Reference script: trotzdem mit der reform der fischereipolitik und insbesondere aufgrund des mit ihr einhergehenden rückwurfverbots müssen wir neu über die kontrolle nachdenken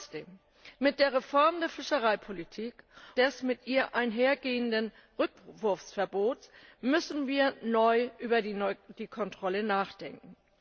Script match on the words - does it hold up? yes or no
no